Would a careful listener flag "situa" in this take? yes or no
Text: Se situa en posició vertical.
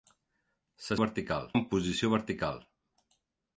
yes